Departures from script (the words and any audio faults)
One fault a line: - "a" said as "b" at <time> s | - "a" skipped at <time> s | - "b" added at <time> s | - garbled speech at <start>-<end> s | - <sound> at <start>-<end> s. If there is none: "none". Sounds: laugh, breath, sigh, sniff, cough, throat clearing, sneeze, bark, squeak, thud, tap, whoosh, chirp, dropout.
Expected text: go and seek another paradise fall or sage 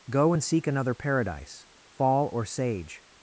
none